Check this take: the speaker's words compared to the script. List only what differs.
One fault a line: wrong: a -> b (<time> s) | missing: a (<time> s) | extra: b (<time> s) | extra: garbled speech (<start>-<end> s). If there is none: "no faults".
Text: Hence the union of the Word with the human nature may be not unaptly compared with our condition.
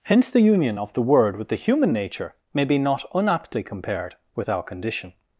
no faults